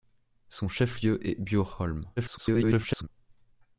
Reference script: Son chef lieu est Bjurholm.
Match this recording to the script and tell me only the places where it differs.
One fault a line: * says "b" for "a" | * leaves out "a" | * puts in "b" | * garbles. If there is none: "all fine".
* garbles